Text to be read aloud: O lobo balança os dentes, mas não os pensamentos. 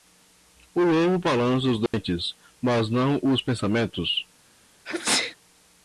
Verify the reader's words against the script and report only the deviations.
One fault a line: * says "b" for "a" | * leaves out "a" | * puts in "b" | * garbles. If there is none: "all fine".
all fine